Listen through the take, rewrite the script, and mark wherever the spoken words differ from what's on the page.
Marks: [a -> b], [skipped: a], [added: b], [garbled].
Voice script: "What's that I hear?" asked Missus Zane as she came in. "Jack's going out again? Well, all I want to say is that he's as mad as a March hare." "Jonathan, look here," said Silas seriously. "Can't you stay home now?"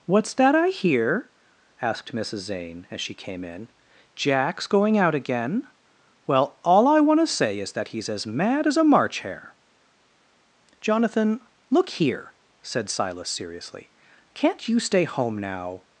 "What's that I hear?" asked Missus Zane as she came in. "Jack's going out again? Well, all I want to say is that he's as mad as a March hare." "Jonathan, look here," said Silas seriously. "Can't you stay home now?"